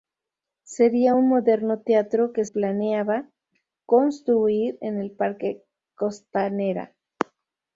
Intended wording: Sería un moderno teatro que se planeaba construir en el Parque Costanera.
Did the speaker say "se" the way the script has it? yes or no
no